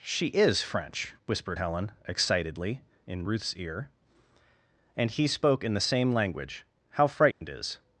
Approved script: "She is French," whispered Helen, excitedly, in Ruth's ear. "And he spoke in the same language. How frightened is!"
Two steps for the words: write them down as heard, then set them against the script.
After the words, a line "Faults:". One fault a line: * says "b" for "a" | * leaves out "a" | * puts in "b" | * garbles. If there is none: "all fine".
"She is French," whispered Helen, excitedly, in Ruth's ear. "And he spoke in the same language. How frightened is!"
Faults:
all fine